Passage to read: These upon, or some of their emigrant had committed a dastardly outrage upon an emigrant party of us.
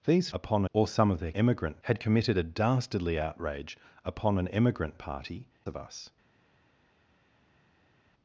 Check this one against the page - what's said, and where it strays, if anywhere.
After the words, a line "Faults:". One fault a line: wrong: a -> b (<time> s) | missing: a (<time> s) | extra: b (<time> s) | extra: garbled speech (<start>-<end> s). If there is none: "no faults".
These upon, or some of their emigrant had committed a dastardly outrage upon an emigrant party of us.
Faults:
no faults